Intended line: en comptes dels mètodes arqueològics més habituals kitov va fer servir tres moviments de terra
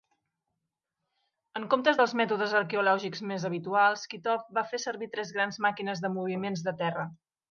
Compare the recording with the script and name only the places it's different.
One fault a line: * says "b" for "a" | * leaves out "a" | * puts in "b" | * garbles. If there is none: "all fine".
* puts in "grans màquines de"